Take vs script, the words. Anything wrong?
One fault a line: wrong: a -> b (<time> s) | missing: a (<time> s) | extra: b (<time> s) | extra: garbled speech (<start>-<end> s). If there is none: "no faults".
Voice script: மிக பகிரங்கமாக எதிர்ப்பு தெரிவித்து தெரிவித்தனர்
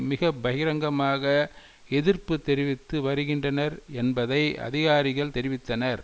extra: வருகின்றனர் என்பதை அதிகாரிகள் (3.0 s)